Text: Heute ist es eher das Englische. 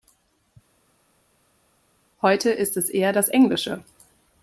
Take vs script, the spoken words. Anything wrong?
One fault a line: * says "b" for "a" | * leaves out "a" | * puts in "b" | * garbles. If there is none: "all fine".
all fine